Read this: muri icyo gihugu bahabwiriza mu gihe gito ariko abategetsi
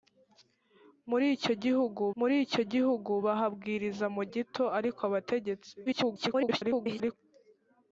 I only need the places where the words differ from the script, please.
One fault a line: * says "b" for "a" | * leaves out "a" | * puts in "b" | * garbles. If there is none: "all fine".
* puts in "muri icyo gihugu"
* leaves out "gihe"
* garbles